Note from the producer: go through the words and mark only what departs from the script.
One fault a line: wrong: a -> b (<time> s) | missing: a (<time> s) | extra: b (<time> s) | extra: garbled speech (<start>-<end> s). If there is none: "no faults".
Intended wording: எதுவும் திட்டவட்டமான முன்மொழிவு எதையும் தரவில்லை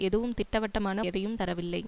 missing: முன்மொழிவு (1.0 s)